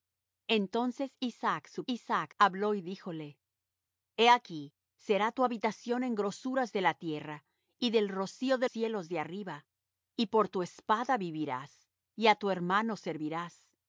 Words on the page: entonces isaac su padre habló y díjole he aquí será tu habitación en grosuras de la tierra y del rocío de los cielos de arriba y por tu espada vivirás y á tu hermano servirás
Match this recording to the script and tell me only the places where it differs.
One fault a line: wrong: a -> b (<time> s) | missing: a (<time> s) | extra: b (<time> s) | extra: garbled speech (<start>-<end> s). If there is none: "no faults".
wrong: padre -> isaac (1.9 s)
missing: los (8.7 s)